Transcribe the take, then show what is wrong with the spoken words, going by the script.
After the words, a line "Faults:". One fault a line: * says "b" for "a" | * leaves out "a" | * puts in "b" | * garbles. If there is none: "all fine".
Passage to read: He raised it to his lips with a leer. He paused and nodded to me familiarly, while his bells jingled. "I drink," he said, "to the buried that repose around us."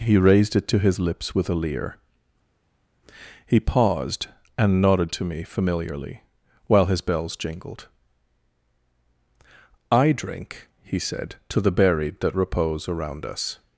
He raised it to his lips with a leer. He paused and nodded to me familiarly, while his bells jingled. "I drink," he said, "to the buried that repose around us."
Faults:
all fine